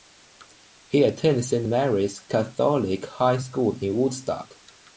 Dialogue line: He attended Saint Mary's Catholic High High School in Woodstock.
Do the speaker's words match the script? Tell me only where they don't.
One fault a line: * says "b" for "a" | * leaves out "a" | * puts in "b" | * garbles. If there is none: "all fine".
* leaves out "High"